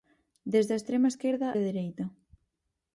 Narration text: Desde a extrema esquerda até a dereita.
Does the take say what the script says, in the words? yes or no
no